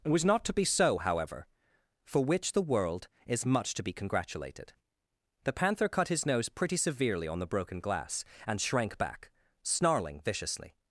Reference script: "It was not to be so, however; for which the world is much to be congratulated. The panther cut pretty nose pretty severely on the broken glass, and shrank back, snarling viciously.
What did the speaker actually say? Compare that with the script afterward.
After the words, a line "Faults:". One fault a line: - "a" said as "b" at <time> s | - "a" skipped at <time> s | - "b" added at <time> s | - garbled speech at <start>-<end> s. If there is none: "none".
"It was not to be so, however; for which the world is much to be congratulated. The panther cut his nose pretty severely on the broken glass, and shrank back, snarling viciously.
Faults:
- "pretty" said as "his" at 6.1 s